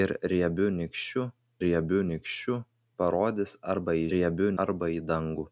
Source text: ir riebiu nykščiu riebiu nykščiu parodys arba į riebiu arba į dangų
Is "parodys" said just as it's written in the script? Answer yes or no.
yes